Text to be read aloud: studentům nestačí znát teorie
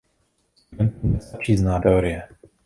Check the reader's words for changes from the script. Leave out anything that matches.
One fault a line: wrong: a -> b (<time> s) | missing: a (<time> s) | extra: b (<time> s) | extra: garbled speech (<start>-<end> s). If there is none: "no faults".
no faults